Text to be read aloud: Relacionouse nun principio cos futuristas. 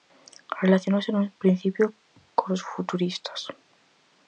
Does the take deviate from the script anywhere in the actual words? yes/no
no